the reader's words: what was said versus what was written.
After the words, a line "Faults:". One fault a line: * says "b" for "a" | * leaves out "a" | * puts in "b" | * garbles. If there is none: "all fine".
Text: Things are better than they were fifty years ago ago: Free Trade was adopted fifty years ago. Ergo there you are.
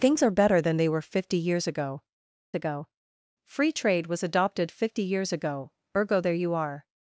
Things are better than they were fifty years ago ago: Free Trade was adopted fifty years ago. Ergo there you are.
Faults:
all fine